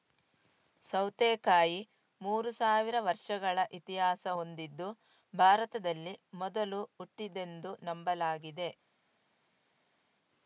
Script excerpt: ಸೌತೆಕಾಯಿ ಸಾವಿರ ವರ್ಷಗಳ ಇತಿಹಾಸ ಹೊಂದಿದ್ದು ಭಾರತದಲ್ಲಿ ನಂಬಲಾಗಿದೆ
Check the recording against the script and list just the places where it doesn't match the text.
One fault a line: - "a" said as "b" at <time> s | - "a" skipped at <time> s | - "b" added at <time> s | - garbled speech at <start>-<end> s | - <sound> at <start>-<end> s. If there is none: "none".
- "ಮೂರು" added at 2.2 s
- "ಮೊದಲು ಹುಟ್ಟಿದ್ದೆಂದು" added at 6.4 s